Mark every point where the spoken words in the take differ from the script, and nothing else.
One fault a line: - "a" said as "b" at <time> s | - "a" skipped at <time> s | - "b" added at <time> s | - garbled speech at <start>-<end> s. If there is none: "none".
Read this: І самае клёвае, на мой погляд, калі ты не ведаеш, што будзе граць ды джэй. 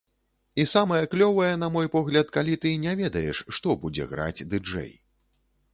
none